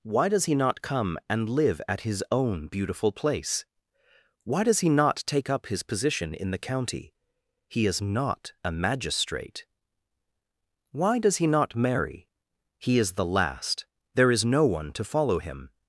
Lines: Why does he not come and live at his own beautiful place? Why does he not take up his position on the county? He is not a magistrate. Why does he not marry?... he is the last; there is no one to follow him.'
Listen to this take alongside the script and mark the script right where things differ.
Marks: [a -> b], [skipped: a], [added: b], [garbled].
Why does he not come and live at his own beautiful place? Why does he not take up his position [on -> in] the county? He is not a magistrate. Why does he not marry?... he is the last; there is no one to follow him.'